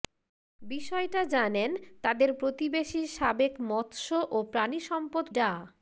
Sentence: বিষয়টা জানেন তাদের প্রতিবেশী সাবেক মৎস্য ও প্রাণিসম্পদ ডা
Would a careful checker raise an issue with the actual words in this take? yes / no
no